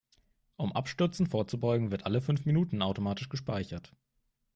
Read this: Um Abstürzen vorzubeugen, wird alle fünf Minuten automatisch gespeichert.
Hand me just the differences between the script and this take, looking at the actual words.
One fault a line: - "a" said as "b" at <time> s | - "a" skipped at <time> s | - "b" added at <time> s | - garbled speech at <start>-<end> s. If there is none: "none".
none